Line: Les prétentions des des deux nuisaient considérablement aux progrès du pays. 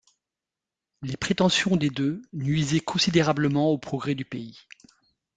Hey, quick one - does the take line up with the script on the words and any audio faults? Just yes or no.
no